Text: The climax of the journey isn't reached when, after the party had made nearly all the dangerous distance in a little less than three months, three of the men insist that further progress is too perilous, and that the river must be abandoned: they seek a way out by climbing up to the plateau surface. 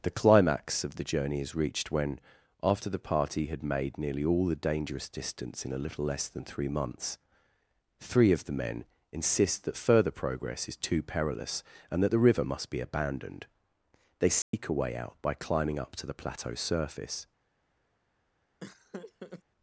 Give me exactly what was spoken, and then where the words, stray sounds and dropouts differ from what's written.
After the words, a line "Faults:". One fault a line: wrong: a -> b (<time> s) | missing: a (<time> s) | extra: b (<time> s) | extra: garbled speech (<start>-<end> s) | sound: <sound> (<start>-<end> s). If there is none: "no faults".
The climax of the journey is reached when, after the party had made nearly all the dangerous distance in a little less than three months, three of the men insist that further progress is too perilous, and that the river must be abandoned: they seek a way out by climbing up to the plateau surface.
Faults:
wrong: isn't -> is (1.4 s)
sound: dropout (14.4-14.5 s)
sound: laugh (18.6-19.4 s)